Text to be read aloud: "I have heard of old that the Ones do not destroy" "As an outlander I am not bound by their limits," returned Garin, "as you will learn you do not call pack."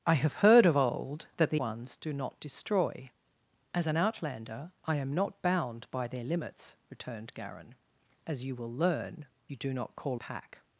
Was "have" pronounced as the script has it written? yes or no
yes